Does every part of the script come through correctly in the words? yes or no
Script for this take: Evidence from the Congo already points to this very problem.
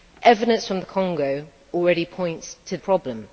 no